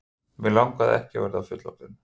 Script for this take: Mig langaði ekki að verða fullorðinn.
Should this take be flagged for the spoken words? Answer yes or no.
no